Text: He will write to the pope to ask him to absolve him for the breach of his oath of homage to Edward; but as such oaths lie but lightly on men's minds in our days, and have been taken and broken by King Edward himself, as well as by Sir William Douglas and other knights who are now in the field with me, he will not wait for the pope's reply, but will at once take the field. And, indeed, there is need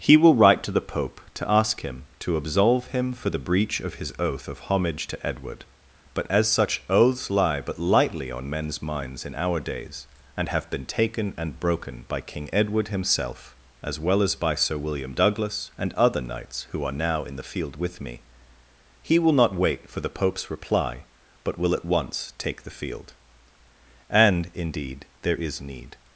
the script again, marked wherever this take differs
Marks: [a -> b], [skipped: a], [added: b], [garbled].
He will write to the pope to ask him to absolve him for the breach of his oath of homage to Edward; but as such oaths lie but lightly on men's minds in our days, and have been taken and broken by King Edward himself, as well as by Sir William Douglas and other knights who are now in the field with me, he will not wait for the pope's reply, but will at once take the field. And, indeed, there is need